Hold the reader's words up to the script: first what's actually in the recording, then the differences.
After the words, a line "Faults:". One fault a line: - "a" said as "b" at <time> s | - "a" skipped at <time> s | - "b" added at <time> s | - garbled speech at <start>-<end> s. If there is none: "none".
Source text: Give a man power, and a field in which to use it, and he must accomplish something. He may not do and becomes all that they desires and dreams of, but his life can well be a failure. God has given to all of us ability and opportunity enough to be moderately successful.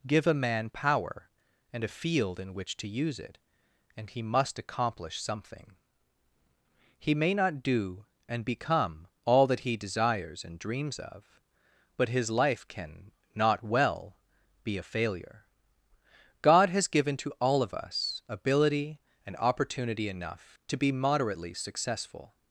Give a man power, and a field in which to use it, and he must accomplish something. He may not do and become all that he desires and dreams of, but his life can not well be a failure. God has given to all of us ability and opportunity enough to be moderately successful.
Faults:
- "becomes" said as "become" at 8.4 s
- "they" said as "he" at 9.6 s
- "not" added at 13.3 s